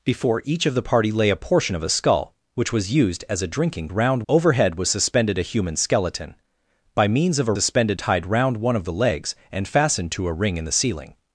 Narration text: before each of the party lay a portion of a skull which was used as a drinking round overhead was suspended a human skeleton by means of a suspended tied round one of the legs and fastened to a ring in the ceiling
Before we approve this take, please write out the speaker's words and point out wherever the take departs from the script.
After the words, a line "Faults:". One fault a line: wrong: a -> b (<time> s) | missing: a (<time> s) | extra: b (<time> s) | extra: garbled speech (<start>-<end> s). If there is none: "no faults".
before each of the party lay a portion of a skull which was used as a drinking round overhead was suspended a human skeleton by means of a suspended tied round one of the legs and fastened to a ring in the ceiling
Faults:
no faults